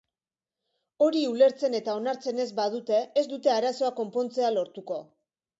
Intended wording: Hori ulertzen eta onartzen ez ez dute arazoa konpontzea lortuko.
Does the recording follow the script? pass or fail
fail